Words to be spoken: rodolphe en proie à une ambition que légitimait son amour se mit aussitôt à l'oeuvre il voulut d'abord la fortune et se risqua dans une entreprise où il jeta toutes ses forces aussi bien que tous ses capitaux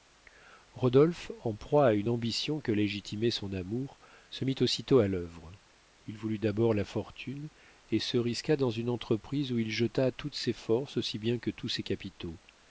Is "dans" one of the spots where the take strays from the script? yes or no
no